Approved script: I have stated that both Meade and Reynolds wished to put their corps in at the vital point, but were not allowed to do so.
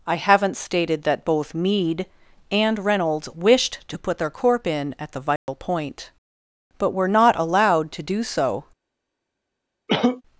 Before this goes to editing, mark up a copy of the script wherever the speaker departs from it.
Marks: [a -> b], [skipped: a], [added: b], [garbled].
I [have -> haven't] stated that both Meade and Reynolds wished to put their [corps -> corp] in at the vital point, but were not allowed to do so.